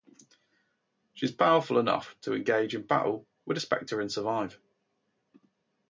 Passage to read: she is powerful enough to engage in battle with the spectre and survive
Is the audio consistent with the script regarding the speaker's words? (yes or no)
yes